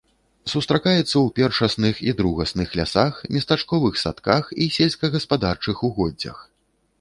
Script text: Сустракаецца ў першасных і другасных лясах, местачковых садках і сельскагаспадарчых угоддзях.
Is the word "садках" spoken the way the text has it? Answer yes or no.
yes